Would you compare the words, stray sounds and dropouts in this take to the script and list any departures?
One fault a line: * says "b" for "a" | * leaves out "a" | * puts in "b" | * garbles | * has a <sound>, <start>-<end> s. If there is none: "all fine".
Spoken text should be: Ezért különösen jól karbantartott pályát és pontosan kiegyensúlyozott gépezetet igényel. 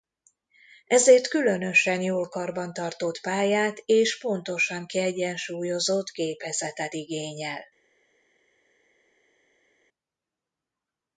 all fine